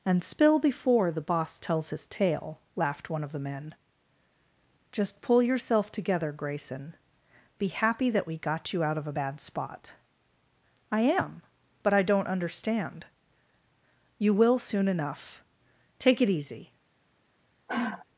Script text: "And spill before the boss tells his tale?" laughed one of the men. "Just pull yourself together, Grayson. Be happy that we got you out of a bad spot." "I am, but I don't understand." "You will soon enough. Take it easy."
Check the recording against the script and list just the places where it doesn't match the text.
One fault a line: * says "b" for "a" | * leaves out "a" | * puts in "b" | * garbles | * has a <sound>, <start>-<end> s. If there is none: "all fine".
* has a sigh, 17.7-18.1 s